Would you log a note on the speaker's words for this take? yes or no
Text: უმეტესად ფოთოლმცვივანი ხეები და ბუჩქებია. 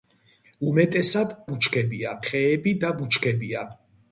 yes